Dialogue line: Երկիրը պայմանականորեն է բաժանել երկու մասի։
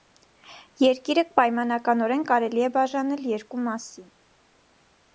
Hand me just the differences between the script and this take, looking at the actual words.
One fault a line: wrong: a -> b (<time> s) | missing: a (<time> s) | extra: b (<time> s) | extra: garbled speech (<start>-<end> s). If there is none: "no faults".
extra: կարելի (2.3 s)